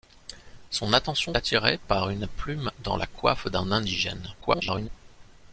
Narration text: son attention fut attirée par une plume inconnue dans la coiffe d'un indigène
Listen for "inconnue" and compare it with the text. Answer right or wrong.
wrong